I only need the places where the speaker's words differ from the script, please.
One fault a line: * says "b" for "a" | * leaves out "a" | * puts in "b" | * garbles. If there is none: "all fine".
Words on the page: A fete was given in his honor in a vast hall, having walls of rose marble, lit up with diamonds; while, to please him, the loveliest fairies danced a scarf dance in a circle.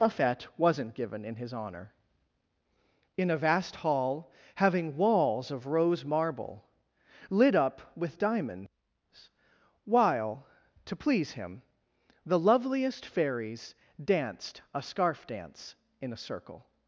* says "wasn't" for "was"